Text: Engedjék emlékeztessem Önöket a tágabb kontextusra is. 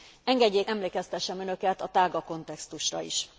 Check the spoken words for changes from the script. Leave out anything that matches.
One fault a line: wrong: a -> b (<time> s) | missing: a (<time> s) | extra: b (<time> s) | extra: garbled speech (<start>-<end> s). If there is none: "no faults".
no faults